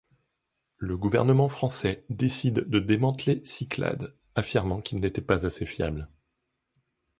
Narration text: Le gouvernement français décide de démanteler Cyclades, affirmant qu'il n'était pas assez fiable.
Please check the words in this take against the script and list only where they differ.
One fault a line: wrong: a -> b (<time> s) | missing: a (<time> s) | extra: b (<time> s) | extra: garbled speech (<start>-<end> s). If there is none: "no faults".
no faults